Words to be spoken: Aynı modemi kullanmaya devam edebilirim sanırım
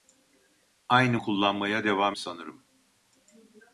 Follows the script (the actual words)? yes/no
no